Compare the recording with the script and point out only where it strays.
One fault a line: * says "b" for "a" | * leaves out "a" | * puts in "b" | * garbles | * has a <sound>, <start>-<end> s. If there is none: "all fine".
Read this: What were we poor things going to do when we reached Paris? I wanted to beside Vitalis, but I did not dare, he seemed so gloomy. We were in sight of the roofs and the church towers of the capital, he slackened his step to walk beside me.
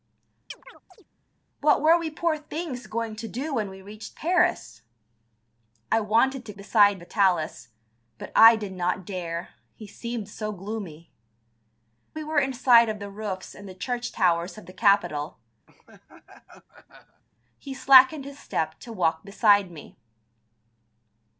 * has a chirp, 0.5-1.1 s
* has a laugh, 15.7-17.2 s